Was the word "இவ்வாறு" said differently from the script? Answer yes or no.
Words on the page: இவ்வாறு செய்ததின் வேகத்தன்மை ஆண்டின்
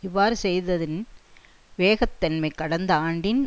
no